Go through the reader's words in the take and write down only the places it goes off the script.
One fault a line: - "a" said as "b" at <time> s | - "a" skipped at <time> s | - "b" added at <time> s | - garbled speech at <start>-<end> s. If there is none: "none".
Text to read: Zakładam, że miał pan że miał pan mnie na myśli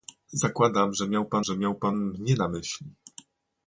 none